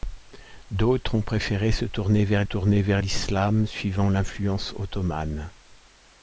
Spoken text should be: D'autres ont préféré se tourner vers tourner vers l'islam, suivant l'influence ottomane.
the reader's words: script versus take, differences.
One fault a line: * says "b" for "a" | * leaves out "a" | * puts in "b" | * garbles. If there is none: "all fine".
all fine